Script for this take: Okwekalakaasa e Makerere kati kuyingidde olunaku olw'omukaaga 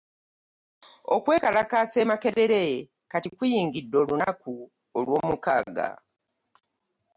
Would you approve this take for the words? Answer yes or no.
yes